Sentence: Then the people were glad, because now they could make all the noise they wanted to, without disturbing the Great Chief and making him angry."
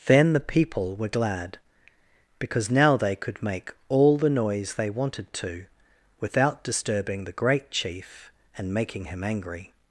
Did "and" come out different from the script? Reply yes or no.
no